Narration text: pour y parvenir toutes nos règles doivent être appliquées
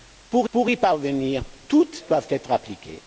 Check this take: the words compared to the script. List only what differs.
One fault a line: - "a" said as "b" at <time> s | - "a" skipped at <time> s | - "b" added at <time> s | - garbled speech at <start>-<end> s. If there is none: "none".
- "pour" added at 0.5 s
- "nos règles" skipped at 2.0 s